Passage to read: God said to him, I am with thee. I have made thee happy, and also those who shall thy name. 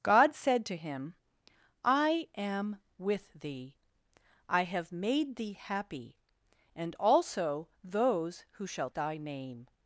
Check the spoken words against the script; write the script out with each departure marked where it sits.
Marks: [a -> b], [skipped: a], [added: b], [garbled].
God said to him, I am with thee. I have made thee happy, and also those who shall thy name.